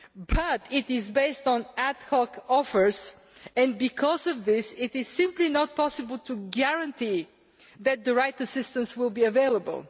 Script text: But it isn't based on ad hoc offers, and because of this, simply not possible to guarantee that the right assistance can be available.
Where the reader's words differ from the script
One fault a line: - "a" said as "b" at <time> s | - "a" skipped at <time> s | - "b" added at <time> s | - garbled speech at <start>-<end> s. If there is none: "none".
- "isn't" said as "is" at 0.9 s
- "it is" added at 4.8 s
- "can" said as "will" at 9.0 s